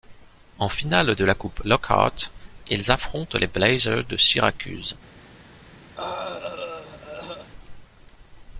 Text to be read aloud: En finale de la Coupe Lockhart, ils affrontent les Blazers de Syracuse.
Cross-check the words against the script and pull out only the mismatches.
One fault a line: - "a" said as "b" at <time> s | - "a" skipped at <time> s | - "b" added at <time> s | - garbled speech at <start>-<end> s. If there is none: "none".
none